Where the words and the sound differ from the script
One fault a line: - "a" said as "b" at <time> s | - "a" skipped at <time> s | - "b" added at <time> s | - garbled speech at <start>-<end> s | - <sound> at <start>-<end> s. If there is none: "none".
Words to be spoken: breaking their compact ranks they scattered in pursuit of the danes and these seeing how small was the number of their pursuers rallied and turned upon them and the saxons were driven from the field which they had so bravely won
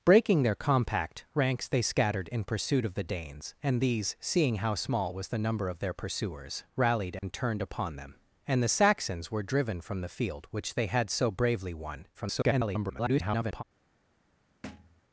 - dropout at 7.2-7.2 s
- garbled speech at 12.1-13.6 s
- thud at 14.6-15.0 s